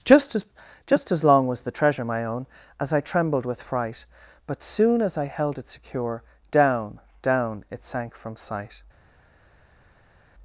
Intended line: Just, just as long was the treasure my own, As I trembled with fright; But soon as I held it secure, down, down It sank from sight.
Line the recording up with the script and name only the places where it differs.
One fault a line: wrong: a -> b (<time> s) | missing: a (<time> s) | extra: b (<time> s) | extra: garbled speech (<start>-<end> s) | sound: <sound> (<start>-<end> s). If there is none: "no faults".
extra: as (0.3 s)